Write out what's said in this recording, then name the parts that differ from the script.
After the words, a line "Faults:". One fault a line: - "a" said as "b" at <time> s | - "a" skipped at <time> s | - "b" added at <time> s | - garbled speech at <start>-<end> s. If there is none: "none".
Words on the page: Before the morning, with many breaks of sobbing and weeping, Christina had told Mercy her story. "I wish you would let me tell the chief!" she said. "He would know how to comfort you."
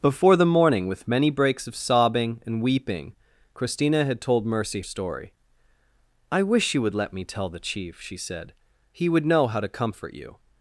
Before the morning, with many breaks of sobbing and weeping, Christina had told Mercy story. "I wish you would let me tell the chief!" she said. "He would know how to comfort you."
Faults:
- "her" skipped at 4.8 s